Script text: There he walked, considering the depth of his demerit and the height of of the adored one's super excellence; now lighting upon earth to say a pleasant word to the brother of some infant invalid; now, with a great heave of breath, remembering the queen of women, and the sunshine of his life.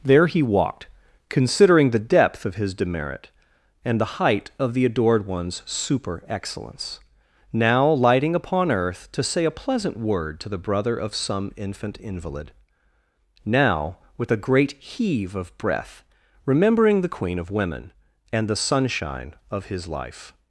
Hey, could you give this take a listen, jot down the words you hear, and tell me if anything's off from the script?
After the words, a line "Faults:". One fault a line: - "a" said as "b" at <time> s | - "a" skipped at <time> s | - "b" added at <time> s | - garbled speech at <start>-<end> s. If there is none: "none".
There he walked, considering the depth of his demerit and the height of the adored one's super excellence; now lighting upon earth to say a pleasant word to the brother of some infant invalid; now, with a great heave of breath, remembering the queen of women, and the sunshine of his life.
Faults:
- "of" skipped at 4.7 s